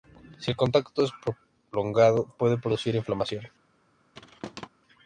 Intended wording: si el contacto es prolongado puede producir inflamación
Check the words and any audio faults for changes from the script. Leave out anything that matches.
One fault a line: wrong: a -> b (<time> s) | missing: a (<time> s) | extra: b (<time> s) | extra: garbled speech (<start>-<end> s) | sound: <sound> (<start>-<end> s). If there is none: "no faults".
sound: thud (4.1-4.7 s)